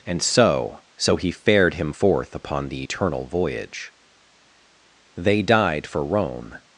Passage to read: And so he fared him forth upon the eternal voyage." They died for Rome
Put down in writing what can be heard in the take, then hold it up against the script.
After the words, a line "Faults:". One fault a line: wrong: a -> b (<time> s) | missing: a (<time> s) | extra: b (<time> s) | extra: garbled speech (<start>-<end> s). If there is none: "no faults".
And so so he fared him forth upon the eternal voyage." They died for Rome
Faults:
extra: so (0.9 s)